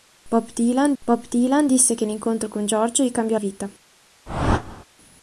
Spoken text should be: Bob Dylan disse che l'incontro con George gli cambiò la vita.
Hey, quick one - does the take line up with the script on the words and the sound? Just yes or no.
no